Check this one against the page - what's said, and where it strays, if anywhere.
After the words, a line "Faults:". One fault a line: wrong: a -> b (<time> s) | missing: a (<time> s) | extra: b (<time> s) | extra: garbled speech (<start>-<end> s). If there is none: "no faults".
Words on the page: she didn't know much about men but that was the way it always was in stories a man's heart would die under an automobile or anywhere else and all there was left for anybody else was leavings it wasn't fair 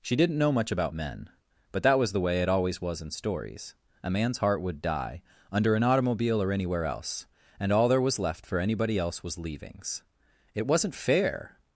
she didn't know much about men but that was the way it always was in stories a man's heart would die under an automobile or anywhere else and all there was left for anybody else was leavings it wasn't fair
Faults:
no faults